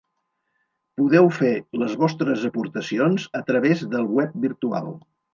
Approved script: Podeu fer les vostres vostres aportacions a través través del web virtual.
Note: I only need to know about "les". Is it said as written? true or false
true